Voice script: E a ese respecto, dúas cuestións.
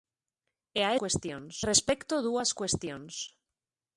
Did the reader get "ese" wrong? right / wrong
wrong